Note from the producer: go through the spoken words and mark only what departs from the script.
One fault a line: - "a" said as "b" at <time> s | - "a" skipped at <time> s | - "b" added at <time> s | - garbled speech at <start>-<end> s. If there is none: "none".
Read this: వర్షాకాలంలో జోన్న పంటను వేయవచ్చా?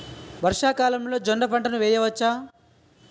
none